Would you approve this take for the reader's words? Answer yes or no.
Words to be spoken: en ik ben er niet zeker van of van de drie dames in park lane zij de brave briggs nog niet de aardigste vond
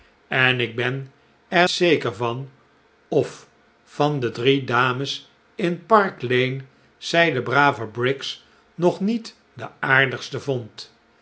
no